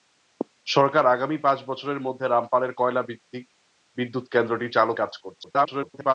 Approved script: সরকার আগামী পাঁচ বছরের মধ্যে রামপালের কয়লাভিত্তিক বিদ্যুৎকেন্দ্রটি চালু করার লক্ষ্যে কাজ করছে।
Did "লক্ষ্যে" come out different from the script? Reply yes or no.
yes